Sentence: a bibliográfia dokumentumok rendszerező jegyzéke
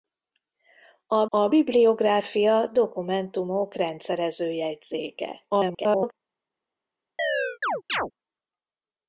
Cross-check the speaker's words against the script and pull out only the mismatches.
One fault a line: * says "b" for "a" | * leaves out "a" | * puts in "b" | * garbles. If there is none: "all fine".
* puts in "a"
* garbles